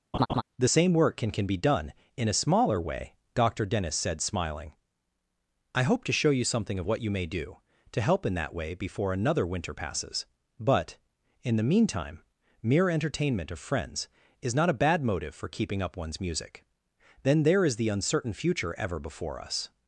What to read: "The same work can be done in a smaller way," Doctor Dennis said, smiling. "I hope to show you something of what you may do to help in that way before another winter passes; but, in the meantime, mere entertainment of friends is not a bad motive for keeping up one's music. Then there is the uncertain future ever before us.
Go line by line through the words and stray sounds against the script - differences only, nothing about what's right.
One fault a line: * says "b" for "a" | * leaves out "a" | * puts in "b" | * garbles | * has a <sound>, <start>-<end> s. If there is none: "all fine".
* has a laugh, 0.1-0.4 s
* puts in "can"